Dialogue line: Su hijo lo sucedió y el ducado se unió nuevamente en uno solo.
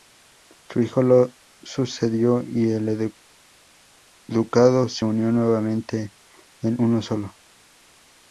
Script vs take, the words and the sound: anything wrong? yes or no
no